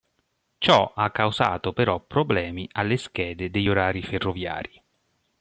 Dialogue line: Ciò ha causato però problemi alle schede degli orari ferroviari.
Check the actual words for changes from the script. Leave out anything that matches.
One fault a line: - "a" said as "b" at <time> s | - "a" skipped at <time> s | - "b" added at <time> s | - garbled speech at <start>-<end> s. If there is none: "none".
none